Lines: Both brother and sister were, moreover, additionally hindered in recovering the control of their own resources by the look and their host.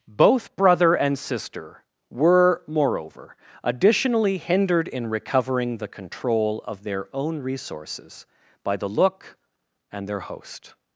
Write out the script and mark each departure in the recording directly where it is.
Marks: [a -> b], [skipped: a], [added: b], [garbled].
Both brother and sister were, moreover, additionally hindered in recovering the control of their own resources by the look and their host.